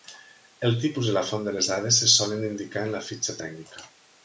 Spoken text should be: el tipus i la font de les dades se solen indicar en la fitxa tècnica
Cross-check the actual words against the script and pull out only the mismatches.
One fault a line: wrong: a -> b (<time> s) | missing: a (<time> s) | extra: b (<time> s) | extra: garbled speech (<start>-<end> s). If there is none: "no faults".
no faults